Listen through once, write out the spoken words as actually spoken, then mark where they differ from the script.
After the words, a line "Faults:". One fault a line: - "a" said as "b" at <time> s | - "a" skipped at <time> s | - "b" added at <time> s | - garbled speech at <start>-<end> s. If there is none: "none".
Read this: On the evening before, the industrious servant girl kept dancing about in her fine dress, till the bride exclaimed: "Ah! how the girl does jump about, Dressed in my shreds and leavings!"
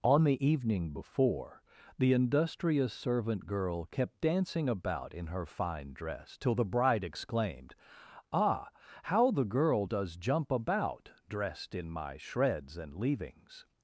On the evening before, the industrious servant girl kept dancing about in her fine dress, till the bride exclaimed: "Ah! how the girl does jump about, Dressed in my shreds and leavings!"
Faults:
none